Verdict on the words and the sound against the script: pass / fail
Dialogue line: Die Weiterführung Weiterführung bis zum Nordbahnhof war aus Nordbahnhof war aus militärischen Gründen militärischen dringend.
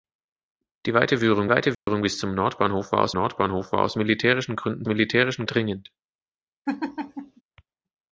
fail